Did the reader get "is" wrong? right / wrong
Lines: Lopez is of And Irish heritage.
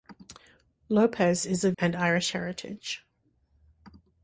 right